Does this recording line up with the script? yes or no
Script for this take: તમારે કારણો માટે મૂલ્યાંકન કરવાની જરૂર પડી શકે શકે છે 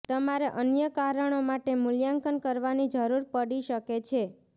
no